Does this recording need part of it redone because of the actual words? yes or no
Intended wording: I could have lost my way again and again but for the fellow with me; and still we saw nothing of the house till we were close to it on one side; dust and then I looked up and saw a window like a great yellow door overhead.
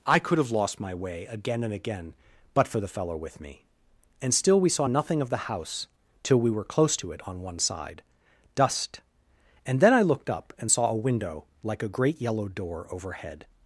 no